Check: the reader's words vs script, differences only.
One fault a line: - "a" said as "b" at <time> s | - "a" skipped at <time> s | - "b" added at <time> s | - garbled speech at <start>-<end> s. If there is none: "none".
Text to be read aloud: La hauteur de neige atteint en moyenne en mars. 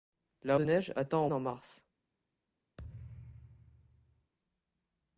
- "hauteur" skipped at 0.6 s
- "moyenne" skipped at 1.3 s